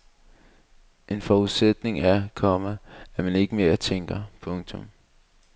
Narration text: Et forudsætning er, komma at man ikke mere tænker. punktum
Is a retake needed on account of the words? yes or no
yes